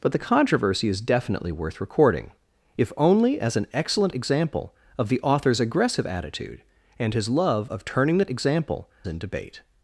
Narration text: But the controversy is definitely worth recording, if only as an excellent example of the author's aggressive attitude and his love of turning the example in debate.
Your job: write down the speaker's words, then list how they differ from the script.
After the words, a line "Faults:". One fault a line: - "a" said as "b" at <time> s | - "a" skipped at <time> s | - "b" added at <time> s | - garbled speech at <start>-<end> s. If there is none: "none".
But the controversy is definitely worth recording, if only as an excellent example of the author's aggressive attitude and his love of turning the example in debate.
Faults:
none